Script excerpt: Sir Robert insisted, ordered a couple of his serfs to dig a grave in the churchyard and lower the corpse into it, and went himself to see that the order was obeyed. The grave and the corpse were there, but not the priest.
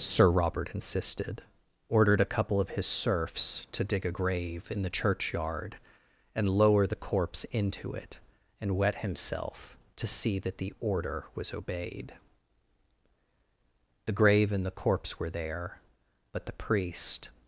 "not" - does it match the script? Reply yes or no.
no